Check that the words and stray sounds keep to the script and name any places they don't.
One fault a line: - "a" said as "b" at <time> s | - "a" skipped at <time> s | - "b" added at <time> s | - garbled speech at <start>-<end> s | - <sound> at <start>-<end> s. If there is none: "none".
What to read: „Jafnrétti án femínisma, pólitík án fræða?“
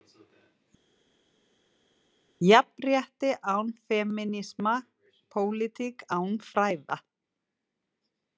none